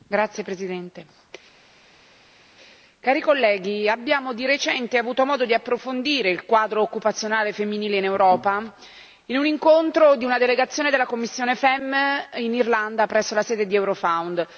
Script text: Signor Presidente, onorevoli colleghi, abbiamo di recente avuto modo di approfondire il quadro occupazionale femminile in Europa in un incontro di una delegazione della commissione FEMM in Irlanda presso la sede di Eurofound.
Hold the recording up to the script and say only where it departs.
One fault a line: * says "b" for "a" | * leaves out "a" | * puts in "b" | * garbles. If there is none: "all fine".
all fine